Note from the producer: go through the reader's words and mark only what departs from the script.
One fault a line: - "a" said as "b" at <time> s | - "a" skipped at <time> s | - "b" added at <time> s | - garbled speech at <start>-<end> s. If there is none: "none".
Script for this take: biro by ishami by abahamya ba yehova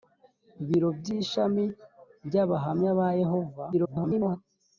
- garbled speech at 3.7-4.4 s